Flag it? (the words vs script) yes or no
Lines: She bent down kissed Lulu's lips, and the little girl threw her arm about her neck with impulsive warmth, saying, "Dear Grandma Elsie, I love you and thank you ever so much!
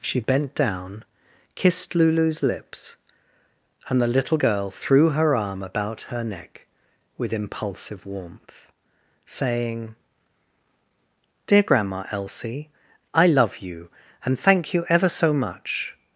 no